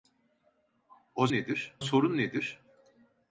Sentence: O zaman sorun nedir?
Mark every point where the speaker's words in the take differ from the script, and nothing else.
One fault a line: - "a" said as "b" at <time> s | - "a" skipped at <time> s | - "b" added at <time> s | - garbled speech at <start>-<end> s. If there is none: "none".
- "zaman" said as "nedir" at 1.3 s